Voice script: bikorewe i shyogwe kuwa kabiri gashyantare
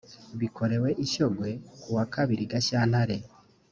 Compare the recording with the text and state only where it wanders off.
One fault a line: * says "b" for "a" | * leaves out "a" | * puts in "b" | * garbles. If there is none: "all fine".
all fine